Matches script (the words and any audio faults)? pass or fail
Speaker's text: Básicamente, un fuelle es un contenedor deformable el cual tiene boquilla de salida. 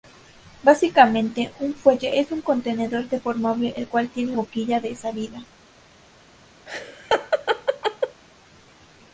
fail